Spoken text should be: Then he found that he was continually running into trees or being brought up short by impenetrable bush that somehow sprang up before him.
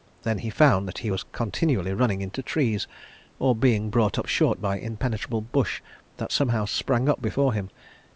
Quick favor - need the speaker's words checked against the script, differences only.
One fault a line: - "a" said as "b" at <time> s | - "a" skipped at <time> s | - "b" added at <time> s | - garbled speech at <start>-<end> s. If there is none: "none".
none